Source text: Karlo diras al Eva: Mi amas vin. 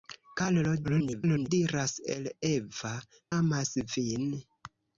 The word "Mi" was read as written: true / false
false